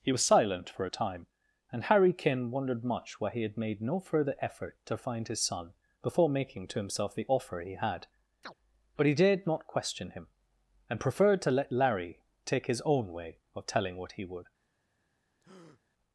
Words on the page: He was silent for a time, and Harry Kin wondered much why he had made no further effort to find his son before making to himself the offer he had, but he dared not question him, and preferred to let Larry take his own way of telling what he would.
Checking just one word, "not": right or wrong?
right